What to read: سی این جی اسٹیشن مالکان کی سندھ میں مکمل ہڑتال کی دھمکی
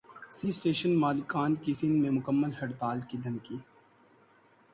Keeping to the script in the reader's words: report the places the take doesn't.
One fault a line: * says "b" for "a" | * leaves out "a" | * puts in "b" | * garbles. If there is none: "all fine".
* leaves out "این"